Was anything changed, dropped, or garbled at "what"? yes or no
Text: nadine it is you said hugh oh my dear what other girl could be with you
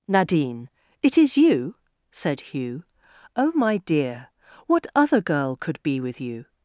no